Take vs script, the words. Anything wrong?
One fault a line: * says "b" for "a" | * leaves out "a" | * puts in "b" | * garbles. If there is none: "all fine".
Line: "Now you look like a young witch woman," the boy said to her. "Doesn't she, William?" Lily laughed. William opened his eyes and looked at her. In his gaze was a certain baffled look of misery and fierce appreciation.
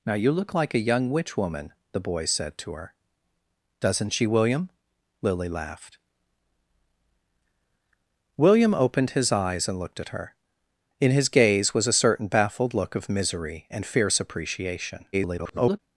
* garbles